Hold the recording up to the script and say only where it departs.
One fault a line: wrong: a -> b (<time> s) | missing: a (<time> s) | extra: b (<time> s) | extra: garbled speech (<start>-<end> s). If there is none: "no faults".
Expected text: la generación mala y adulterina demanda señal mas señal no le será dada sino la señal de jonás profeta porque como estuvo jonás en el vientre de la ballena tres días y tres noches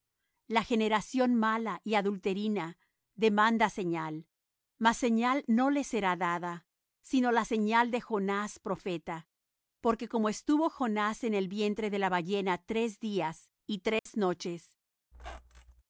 no faults